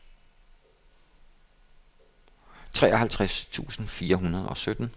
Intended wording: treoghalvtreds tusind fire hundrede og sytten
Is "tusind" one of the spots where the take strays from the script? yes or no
no